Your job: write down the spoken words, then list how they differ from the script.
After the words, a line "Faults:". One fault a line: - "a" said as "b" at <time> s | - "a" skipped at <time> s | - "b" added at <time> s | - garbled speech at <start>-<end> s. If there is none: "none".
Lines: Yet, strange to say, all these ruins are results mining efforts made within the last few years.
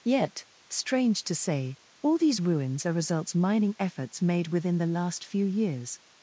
Yet, strange to say, all these ruins are results mining efforts made within the last few years.
Faults:
none